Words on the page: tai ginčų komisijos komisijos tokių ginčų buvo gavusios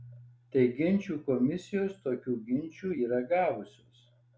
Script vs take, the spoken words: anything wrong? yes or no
yes